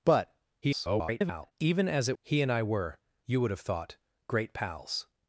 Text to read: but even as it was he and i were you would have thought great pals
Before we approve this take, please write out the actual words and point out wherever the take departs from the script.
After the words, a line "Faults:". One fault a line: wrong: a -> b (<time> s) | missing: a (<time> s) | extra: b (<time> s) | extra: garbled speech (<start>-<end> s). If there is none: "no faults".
but [garbled] even as it he and i were you would have thought great pals
Faults:
extra: garbled speech (0.6-1.5 s)
missing: was (2.2 s)